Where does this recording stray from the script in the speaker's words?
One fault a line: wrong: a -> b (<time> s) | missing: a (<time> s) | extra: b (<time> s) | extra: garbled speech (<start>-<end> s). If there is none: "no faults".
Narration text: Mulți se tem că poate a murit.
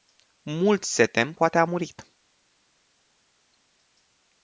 missing: că (1.3 s)